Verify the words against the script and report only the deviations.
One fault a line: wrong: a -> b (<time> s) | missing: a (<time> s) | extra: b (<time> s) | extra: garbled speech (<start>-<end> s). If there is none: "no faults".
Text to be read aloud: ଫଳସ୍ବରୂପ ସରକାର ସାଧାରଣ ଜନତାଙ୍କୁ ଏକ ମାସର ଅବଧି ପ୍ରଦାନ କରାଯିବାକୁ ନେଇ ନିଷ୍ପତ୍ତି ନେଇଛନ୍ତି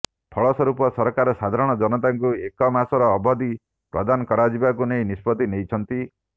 no faults